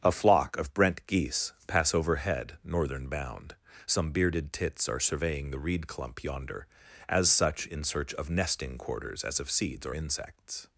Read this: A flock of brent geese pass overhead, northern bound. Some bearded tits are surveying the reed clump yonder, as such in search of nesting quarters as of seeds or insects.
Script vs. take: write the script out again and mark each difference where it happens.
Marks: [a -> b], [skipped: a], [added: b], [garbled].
A flock of brent geese pass overhead, northern bound. Some bearded tits are surveying the reed clump yonder, as such in search of nesting quarters as of seeds or insects.